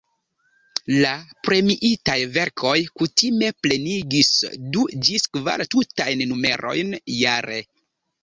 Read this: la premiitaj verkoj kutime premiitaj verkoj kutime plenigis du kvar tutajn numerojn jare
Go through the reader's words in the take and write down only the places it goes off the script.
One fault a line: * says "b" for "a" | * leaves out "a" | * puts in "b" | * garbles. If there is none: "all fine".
* leaves out "premiitaj verkoj kutime"
* puts in "ĝis"